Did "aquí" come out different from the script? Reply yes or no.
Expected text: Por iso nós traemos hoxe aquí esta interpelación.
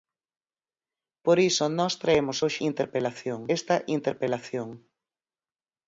yes